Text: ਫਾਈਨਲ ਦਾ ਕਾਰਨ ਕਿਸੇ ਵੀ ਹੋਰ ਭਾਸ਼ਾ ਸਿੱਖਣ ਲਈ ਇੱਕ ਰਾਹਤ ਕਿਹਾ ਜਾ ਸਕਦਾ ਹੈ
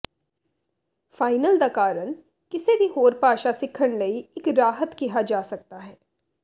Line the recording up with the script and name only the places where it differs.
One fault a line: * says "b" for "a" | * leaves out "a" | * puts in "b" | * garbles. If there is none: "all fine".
all fine